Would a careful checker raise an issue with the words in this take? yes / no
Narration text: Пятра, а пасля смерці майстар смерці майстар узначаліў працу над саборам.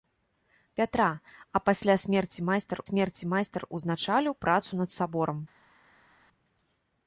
no